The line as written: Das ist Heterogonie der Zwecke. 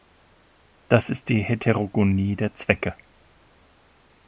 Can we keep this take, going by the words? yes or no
no